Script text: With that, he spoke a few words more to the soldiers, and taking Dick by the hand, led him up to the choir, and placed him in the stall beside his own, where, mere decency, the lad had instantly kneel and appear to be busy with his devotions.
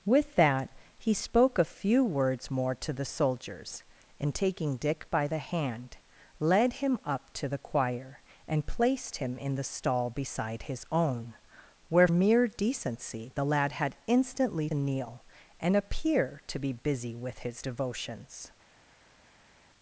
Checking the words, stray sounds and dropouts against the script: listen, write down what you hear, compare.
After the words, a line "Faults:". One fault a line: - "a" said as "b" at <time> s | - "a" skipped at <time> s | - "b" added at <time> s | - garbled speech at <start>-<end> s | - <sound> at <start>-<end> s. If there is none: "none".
With that, he spoke a few words more to the soldiers, and taking Dick by the hand, led him up to the choir, and placed him in the stall beside his own, where, mere decency, the lad had instantly kneel and appear to be busy with his devotions.
Faults:
none